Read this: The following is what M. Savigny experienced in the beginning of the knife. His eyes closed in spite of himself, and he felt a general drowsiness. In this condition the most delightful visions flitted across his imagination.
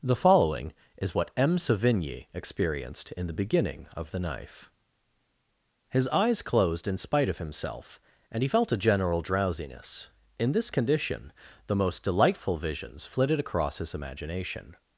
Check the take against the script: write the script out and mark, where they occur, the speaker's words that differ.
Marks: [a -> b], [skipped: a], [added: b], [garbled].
The following is what M. Savigny experienced in the beginning of the knife. His eyes closed in spite of himself, and he felt a general drowsiness. In this condition the most delightful visions flitted across his imagination.